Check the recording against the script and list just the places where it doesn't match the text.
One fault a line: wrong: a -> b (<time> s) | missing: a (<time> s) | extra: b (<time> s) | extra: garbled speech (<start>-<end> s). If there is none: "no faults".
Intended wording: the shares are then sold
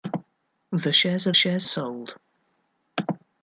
wrong: then -> shares (1.3 s)